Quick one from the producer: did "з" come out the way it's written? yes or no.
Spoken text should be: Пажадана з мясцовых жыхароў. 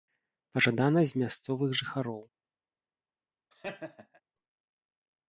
yes